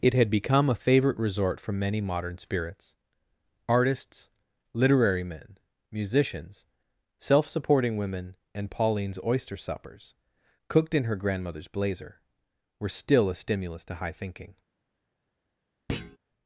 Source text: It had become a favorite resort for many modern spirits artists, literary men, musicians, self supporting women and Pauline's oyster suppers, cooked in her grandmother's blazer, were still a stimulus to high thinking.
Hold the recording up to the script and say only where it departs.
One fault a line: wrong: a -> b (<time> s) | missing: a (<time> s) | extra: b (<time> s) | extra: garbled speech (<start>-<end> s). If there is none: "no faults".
no faults